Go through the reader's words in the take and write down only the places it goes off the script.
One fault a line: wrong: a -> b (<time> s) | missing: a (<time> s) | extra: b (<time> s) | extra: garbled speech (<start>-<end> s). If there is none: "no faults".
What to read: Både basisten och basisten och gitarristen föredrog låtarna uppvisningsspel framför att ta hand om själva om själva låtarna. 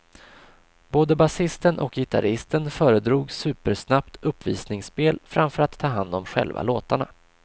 missing: basisten och (1.9 s)
wrong: låtarna -> supersnabbt (3.3 s)
missing: om själva (6.6 s)